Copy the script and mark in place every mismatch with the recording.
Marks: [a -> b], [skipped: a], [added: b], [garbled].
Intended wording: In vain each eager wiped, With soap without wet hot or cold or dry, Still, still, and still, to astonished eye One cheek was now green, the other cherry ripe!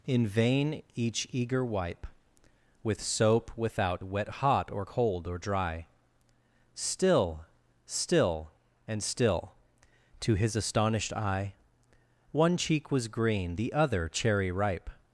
In vain each eager [wiped, -> wipe] With soap without wet hot or cold or dry, Still, still, and still, to [added: his] astonished eye One cheek was [skipped: now] green, the other cherry ripe!